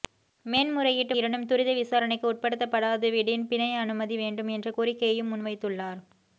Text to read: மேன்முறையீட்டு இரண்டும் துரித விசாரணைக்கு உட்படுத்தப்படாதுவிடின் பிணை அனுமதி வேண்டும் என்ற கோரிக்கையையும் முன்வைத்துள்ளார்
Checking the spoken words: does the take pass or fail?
pass